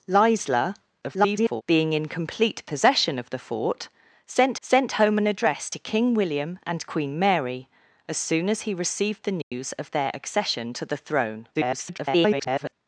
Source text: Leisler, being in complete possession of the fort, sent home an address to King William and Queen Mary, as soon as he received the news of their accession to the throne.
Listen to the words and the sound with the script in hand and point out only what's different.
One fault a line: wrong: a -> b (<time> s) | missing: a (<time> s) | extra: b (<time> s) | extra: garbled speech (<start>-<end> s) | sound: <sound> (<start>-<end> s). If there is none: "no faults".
extra: garbled speech (1.0-1.6 s)
extra: sent (4.6 s)
sound: dropout (9.4-9.5 s)
extra: garbled speech (11.5-12.7 s)